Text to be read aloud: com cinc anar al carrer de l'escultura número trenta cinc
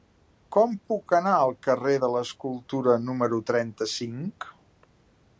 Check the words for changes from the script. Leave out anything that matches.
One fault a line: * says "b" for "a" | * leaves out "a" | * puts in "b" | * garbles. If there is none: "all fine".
* says "puc" for "cinc"